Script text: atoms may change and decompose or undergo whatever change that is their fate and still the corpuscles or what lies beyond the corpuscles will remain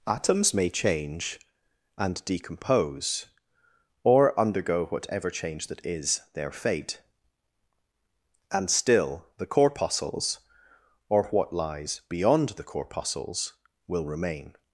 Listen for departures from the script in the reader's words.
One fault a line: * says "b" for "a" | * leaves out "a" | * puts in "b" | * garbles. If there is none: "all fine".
all fine